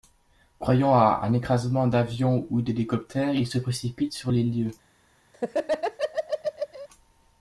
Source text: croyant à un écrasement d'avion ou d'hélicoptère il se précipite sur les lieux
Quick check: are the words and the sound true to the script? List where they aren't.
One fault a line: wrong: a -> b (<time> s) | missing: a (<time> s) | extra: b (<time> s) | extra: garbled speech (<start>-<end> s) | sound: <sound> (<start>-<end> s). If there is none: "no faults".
sound: laugh (5.3-6.9 s)